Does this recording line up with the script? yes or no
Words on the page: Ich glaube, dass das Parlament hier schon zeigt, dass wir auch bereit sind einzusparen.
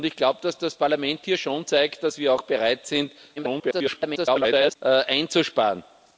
no